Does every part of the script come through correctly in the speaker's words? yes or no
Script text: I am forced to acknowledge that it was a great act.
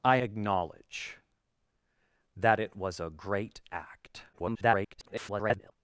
no